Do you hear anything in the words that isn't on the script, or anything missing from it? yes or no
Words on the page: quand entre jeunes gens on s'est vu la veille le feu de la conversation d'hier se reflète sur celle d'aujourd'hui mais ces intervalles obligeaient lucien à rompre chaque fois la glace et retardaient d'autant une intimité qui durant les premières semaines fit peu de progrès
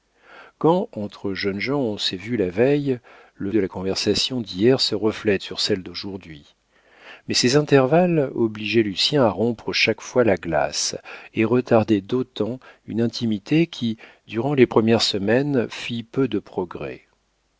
yes